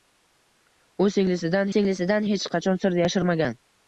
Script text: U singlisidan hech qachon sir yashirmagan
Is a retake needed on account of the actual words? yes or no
yes